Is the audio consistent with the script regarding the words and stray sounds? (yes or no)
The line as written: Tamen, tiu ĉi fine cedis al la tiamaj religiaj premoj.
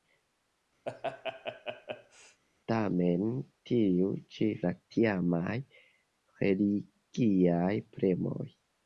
no